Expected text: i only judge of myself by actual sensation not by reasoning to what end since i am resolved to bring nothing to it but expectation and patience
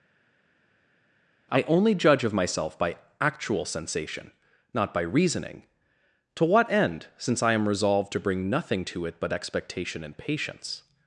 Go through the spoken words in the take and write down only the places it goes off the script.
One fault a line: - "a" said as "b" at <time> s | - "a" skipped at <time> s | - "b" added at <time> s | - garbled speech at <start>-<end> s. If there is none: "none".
none